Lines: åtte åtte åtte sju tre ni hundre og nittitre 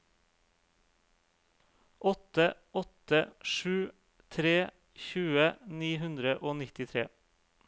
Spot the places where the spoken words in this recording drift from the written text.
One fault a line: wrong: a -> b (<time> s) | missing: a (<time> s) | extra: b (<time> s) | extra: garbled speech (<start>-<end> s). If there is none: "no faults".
missing: åtte (3.2 s)
extra: tjue (5.1 s)